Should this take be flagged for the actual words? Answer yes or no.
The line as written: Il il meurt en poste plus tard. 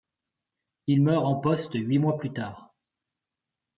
yes